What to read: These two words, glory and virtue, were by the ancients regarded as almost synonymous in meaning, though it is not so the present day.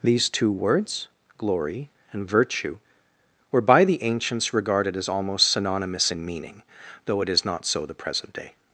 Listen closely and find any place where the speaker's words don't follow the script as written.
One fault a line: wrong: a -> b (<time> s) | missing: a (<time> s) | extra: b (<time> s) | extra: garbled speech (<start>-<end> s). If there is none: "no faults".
no faults